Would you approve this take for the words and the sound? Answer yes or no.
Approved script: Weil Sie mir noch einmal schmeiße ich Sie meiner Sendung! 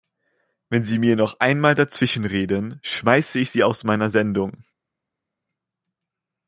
no